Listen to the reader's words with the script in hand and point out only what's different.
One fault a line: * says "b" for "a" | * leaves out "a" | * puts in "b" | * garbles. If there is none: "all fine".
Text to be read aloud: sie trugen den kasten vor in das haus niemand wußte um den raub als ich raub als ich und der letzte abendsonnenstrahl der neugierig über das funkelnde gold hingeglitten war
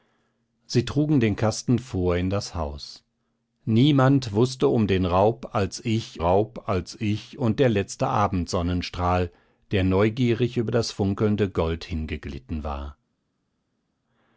all fine